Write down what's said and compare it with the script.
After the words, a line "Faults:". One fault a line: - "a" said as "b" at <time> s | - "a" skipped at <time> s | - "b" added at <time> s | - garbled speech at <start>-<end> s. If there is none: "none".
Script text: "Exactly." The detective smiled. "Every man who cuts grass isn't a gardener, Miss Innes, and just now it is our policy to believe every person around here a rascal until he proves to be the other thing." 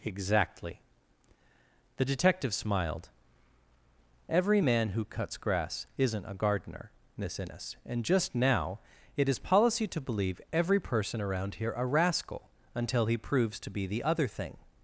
"Exactly." The detective smiled. "Every man who cuts grass isn't a gardener, Miss Innes, and just now it is policy to believe every person around here a rascal until he proves to be the other thing."
Faults:
- "our" skipped at 9.4 s